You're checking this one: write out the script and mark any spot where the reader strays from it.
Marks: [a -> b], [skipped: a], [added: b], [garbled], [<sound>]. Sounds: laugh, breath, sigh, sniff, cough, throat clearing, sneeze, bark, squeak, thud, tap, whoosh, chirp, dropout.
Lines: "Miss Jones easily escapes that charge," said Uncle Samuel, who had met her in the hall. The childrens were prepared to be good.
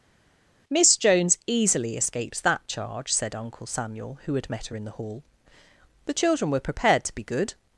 "Miss Jones easily escapes that charge," said Uncle Samuel, who had met her in the hall. The [childrens -> children] were prepared to be good.